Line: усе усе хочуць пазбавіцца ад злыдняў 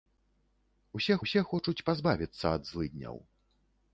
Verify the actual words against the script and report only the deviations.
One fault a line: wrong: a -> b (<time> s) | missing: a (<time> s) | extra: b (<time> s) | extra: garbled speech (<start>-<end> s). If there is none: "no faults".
no faults